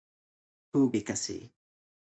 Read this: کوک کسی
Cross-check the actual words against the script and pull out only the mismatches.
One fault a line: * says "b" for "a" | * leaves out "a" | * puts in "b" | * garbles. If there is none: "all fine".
all fine